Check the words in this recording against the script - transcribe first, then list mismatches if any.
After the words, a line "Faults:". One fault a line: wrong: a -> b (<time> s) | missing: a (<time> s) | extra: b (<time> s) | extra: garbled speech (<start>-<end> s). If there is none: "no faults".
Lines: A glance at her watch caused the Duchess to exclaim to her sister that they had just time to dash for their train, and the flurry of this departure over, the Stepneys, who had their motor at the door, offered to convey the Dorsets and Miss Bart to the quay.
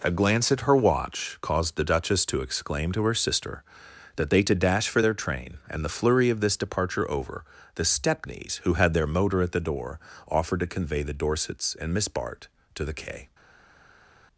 A glance at her watch caused the Duchess to exclaim to her sister that they to dash for their train, and the flurry of this departure over, the Stepneys, who had their motor at the door, offered to convey the Dorsets and Miss Bart to the quay.
Faults:
missing: had just time (4.4 s)